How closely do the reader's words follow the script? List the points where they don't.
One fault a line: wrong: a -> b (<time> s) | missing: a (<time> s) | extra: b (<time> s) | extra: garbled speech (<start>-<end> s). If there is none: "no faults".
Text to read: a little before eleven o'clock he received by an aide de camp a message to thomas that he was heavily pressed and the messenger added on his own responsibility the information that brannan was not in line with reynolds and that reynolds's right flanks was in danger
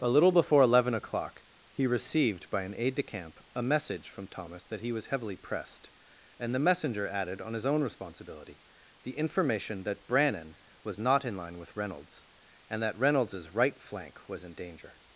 wrong: to -> from (4.1 s)
wrong: flanks -> flank (13.8 s)